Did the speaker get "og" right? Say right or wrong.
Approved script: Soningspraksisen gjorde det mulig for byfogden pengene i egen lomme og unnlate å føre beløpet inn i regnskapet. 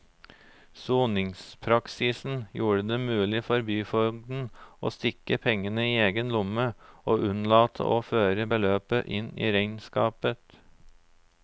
right